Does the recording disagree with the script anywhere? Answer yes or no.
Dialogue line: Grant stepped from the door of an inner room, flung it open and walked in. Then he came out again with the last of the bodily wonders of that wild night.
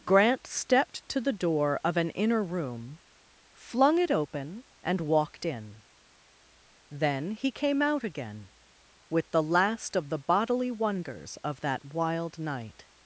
yes